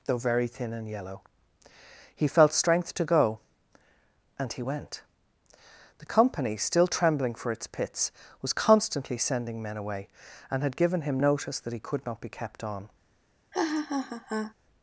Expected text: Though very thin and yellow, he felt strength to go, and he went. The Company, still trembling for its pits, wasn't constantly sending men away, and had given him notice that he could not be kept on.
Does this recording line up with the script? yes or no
no